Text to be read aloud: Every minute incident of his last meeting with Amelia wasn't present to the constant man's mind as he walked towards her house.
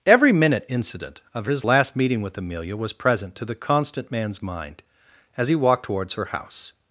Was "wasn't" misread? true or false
true